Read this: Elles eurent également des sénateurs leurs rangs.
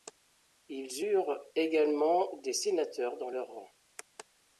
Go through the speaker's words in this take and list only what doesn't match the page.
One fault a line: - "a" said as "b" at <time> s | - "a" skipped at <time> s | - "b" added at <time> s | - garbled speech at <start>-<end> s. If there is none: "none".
- "Elles" said as "Ils" at 0.7 s
- "dans" added at 3.2 s